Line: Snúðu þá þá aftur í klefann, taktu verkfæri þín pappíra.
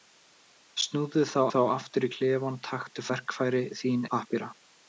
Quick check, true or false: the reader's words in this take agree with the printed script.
true